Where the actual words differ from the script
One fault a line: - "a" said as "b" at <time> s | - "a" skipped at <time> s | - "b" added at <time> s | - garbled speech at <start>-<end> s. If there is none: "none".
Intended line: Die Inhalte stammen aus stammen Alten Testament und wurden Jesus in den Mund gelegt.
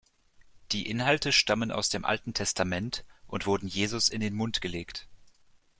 - "stammen" said as "dem" at 1.9 s